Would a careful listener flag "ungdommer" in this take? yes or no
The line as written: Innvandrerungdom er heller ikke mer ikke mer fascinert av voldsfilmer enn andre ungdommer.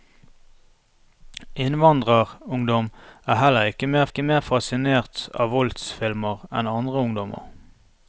no